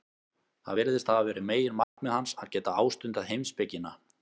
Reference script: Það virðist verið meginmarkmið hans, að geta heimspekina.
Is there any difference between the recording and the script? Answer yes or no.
yes